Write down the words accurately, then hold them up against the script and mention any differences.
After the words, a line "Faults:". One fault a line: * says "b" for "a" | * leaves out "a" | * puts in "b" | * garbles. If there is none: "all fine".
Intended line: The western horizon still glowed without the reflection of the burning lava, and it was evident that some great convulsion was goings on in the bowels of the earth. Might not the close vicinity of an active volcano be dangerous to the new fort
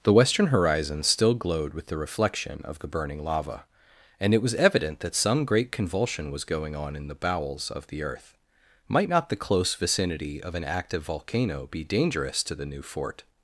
The western horizon still glowed with the reflection of the burning lava, and it was evident that some great convulsion was going on in the bowels of the earth. Might not the close vicinity of an active volcano be dangerous to the new fort
Faults:
* says "with" for "without"
* says "going" for "goings"